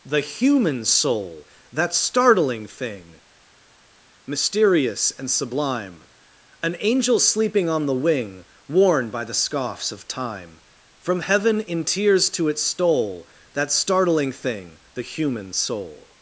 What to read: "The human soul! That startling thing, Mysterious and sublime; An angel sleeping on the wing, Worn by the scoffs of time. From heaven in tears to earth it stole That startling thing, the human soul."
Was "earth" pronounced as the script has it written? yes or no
no